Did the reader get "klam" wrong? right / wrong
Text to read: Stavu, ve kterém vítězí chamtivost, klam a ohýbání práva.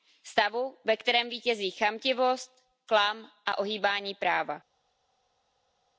right